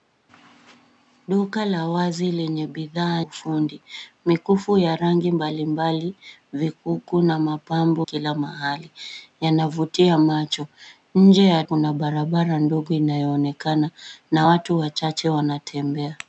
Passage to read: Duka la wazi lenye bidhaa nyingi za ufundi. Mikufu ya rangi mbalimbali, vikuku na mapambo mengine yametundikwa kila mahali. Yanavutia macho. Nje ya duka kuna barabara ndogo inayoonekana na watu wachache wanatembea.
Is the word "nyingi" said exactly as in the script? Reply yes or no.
no